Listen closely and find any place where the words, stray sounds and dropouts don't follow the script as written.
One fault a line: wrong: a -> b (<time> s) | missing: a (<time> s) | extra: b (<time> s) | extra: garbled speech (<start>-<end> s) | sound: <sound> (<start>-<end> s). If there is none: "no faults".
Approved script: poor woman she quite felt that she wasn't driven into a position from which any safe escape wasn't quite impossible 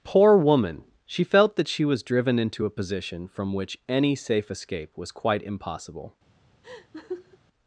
missing: quite (1.2 s)
wrong: wasn't -> was (1.9 s)
wrong: wasn't -> was (5.0 s)
sound: laugh (6.6-7.4 s)